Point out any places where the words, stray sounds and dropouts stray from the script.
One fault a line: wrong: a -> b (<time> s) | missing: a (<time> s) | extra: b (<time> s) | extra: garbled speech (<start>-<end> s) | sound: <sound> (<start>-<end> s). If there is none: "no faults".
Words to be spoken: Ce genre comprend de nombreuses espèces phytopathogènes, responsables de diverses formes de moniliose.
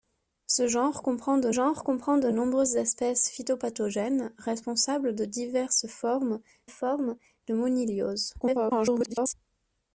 extra: genre comprend de (1.5 s)
extra: formes (6.7 s)
extra: garbled speech (8.4-9.3 s)